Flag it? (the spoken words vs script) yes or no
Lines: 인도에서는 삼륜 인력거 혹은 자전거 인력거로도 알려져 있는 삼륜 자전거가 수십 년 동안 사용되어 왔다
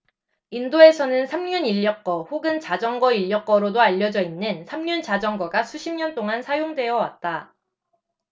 no